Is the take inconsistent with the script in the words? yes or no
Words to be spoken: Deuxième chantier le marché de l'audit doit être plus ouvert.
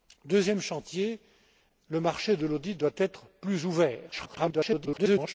yes